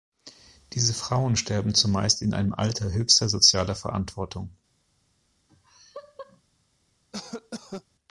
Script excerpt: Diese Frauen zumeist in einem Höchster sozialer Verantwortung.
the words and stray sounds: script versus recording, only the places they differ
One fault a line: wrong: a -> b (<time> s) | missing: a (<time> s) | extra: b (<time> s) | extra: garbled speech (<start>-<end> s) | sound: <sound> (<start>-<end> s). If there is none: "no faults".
extra: sterben (1.3 s)
extra: Alter (2.5 s)
sound: laugh (5.5-6.4 s)
sound: cough (7.1-7.8 s)